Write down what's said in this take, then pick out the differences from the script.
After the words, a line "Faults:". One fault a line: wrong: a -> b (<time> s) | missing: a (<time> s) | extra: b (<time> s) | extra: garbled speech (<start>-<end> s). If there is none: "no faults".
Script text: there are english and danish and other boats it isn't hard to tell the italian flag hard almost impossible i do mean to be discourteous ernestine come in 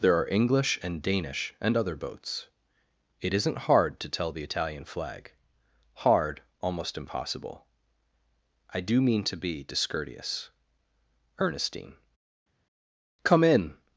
there are english and danish and other boats it isn't hard to tell the italian flag hard almost impossible i do mean to be discourteous ernestine come in
Faults:
no faults